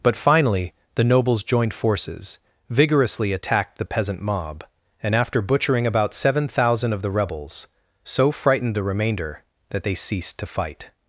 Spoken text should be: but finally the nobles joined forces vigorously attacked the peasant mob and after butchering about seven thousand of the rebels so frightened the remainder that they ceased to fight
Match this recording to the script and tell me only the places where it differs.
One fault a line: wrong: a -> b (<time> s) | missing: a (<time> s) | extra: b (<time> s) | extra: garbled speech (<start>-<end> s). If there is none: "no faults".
no faults